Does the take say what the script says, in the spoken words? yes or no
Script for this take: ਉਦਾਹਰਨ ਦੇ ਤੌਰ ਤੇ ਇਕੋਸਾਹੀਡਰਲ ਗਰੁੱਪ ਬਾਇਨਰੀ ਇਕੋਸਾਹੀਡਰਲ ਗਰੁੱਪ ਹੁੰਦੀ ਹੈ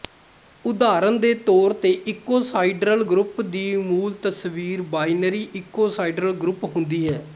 no